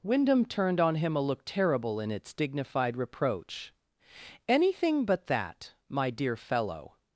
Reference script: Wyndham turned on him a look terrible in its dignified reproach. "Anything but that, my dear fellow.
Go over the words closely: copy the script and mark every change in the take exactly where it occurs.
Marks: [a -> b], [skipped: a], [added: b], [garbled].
Wyndham turned on him a look terrible in its dignified reproach. "Anything but that, my dear fellow.